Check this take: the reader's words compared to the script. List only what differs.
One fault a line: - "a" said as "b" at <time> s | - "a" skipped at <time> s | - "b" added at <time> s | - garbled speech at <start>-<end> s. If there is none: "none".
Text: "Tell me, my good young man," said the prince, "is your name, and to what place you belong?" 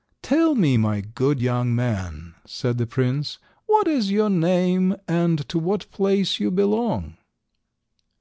- "what" added at 3.6 s